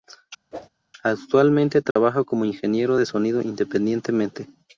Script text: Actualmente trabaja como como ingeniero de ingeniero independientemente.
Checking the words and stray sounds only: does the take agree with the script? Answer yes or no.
no